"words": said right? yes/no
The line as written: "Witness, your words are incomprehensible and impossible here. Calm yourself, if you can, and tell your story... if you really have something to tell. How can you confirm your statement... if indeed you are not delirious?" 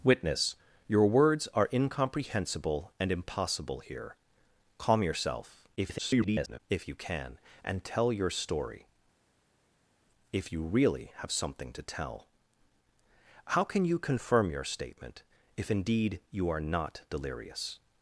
yes